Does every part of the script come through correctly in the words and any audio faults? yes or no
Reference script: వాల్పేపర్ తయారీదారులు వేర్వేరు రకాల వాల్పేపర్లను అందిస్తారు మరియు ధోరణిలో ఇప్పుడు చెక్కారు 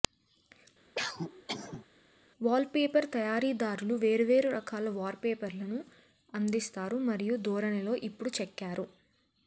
no